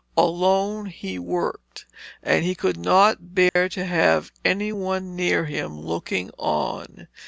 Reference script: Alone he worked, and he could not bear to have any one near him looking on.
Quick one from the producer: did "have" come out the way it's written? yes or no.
yes